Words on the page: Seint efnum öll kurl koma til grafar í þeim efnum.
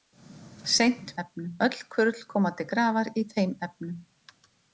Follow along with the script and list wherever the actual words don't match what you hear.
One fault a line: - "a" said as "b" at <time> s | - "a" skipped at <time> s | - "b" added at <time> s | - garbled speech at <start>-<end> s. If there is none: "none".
none